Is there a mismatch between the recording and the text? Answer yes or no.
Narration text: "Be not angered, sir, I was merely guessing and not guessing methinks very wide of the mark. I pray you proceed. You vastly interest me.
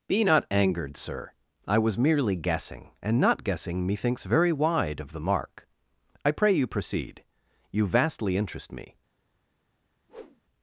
no